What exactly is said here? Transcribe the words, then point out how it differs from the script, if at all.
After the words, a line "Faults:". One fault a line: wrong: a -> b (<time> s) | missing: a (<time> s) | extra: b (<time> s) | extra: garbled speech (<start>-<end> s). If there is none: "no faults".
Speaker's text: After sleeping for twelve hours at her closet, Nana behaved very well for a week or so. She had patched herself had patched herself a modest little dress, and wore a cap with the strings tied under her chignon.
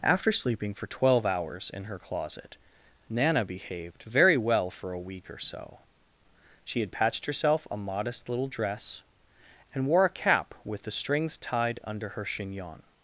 After sleeping for twelve hours in her closet, Nana behaved very well for a week or so. She had patched herself a modest little dress, and wore a cap with the strings tied under her chignon.
Faults:
wrong: at -> in (1.7 s)
missing: had patched herself (7.7 s)